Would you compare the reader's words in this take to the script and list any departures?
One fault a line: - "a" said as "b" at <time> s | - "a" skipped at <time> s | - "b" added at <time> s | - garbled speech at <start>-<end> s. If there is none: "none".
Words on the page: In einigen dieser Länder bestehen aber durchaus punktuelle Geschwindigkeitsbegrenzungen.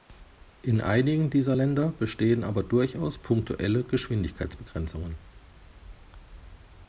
none